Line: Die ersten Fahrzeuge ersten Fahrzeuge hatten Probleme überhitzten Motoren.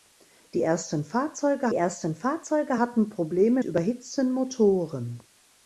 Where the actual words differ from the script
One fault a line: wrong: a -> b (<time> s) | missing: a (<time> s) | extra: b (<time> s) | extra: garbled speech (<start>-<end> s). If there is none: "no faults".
no faults